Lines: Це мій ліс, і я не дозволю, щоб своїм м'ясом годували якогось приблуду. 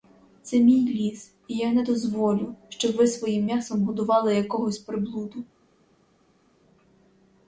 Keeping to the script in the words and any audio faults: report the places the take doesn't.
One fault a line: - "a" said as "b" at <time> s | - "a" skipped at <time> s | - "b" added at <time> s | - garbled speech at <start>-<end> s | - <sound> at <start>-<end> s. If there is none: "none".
- "ви" added at 2.9 s